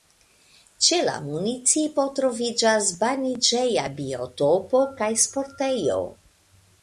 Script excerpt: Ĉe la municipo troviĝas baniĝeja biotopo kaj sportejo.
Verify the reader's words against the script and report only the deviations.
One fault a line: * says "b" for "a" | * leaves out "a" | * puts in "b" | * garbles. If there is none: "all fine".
all fine